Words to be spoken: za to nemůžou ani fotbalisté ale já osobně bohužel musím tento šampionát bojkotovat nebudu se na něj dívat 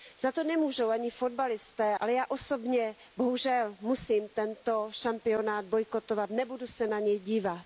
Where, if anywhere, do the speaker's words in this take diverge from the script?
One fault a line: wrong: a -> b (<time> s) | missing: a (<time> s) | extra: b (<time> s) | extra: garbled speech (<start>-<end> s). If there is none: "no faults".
no faults